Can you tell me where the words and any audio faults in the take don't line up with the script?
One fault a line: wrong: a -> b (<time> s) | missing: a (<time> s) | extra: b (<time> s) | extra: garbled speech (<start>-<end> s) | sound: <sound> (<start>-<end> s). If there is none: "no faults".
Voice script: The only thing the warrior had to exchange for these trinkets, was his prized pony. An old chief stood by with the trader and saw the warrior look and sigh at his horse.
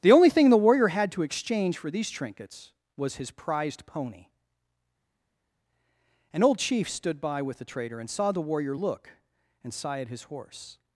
no faults